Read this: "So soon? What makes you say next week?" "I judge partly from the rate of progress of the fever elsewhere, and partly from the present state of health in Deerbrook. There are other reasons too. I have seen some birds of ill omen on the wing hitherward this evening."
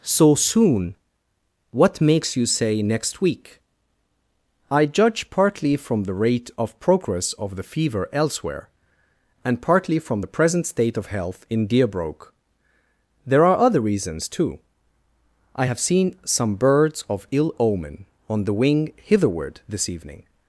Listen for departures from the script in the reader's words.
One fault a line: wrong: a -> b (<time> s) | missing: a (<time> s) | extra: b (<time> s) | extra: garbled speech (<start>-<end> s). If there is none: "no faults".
no faults